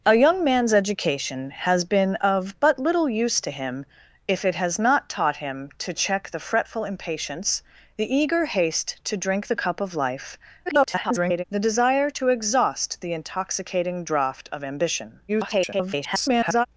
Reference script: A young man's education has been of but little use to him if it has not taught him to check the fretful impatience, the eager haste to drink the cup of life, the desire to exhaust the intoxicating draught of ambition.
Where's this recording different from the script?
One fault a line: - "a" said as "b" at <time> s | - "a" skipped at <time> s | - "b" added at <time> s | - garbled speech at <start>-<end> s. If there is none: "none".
- garbled speech at 10.7-11.4 s
- garbled speech at 15.3-16.7 s